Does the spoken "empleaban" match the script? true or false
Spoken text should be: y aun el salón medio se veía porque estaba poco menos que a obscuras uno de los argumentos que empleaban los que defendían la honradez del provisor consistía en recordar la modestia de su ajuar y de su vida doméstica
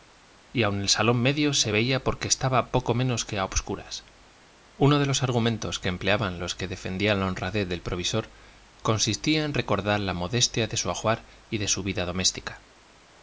true